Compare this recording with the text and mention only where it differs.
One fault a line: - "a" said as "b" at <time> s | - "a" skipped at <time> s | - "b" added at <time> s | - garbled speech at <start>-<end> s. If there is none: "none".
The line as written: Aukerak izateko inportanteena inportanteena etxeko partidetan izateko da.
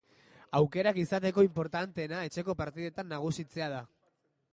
- "inportanteena" skipped at 2.2 s
- "izateko" said as "nagusitzea" at 3.1 s